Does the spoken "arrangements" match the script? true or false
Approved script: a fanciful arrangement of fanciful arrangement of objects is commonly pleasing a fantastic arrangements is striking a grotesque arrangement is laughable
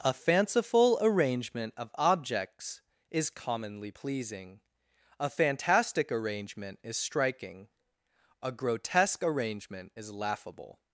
false